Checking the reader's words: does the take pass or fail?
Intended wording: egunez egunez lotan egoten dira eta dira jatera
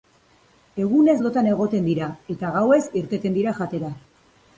fail